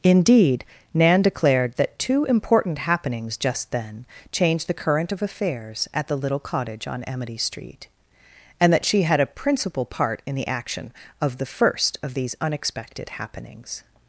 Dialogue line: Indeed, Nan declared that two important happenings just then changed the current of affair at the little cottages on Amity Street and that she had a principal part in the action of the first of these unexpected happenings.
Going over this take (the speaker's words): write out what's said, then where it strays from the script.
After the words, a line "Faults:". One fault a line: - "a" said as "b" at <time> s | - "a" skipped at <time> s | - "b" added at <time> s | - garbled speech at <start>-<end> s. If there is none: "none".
Indeed, Nan declared that two important happenings just then changed the current of affairs at the little cottage on Amity Street and that she had a principal part in the action of the first of these unexpected happenings.
Faults:
- "affair" said as "affairs" at 5.2 s
- "cottages" said as "cottage" at 6.4 s